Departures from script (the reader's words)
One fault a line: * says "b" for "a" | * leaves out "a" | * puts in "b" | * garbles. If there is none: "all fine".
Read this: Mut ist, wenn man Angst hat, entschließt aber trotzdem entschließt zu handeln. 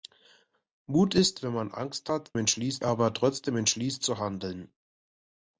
all fine